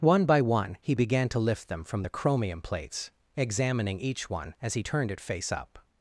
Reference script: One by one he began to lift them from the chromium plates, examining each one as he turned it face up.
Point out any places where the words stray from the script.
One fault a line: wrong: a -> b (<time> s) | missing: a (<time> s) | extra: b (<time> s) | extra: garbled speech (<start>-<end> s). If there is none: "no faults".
no faults